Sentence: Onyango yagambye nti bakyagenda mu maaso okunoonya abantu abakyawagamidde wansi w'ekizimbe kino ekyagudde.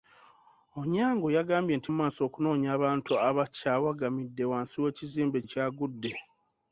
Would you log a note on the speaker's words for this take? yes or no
yes